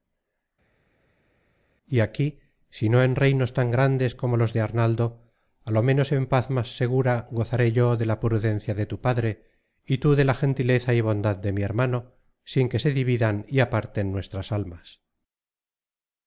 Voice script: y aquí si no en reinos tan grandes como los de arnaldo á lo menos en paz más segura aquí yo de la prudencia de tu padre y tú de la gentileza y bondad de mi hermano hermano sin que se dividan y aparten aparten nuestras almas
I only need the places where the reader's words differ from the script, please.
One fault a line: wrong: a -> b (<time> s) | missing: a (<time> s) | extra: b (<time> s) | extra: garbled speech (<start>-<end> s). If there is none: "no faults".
wrong: aquí -> gozaré (7.4 s)
missing: hermano (12.0 s)
missing: aparten (14.1 s)